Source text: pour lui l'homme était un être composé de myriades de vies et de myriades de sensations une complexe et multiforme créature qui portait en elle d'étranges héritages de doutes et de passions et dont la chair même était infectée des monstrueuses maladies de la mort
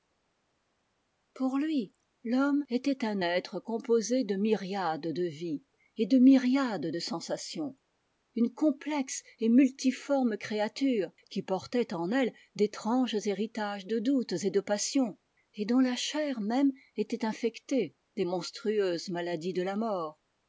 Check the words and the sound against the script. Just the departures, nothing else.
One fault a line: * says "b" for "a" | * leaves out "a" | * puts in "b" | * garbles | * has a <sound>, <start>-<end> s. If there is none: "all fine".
all fine